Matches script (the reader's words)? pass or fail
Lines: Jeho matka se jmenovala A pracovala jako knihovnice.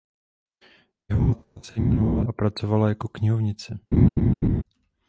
pass